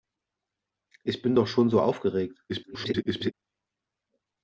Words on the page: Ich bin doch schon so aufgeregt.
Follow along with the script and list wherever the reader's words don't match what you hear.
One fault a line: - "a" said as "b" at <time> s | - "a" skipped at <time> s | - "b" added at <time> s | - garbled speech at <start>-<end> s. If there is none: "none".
- garbled speech at 2.5-3.3 s